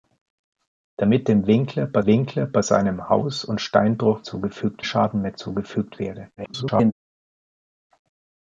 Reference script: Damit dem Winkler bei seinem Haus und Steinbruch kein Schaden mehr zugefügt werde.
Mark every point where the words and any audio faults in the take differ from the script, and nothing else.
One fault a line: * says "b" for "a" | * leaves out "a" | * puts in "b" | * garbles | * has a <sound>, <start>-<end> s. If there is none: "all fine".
* puts in "Winkler bei"
* says "zugefügt" for "kein"
* garbles